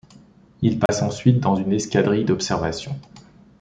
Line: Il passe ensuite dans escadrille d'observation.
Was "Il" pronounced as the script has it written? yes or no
yes